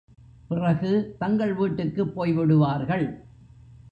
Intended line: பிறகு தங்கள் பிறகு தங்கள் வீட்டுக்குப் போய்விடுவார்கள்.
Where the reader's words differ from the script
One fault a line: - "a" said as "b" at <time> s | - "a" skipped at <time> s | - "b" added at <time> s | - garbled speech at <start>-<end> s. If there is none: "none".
- "பிறகு தங்கள்" skipped at 1.5 s